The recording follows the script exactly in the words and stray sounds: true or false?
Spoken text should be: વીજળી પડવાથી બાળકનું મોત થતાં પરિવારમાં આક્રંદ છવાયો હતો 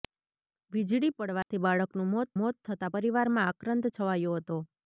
false